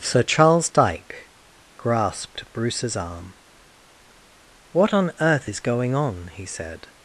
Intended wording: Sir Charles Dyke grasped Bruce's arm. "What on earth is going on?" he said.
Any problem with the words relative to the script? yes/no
no